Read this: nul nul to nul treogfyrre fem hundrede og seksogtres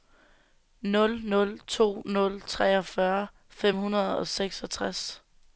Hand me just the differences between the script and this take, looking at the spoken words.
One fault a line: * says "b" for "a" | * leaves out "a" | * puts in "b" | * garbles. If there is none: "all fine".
all fine